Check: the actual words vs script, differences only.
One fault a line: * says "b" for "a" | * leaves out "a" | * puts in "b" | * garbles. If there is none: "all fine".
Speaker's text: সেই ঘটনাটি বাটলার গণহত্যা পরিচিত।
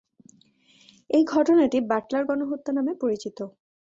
* says "এই" for "সেই"
* puts in "নামে"